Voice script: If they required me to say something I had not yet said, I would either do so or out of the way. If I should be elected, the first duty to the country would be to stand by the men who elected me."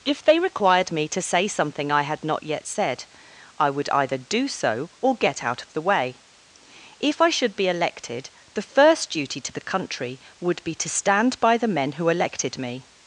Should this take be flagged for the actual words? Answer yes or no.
yes